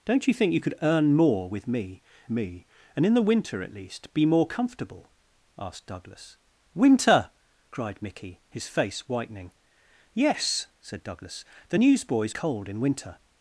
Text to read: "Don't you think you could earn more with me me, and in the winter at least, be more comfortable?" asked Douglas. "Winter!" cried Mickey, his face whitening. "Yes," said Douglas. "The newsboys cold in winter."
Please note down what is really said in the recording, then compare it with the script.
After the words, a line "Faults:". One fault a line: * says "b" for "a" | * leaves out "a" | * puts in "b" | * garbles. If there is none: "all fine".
"Don't you think you could earn more with me me, and in the winter at least, be more comfortable?" asked Douglas. "Winter!" cried Mickey, his face whitening. "Yes," said Douglas. "The newsboys cold in winter."
Faults:
all fine